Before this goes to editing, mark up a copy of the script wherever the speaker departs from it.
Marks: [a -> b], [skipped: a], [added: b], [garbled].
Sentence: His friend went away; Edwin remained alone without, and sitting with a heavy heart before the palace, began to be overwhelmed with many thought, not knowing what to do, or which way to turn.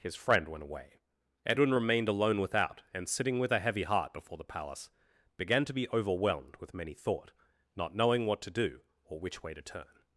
His friend went away; Edwin remained alone without, and sitting with a heavy heart before the palace, began to be overwhelmed with many thought, not knowing what to do, or which way to turn.